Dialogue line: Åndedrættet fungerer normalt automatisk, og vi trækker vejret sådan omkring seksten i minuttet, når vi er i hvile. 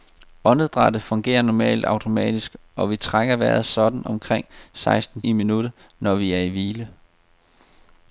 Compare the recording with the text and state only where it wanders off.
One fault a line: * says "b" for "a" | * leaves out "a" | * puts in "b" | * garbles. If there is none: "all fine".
all fine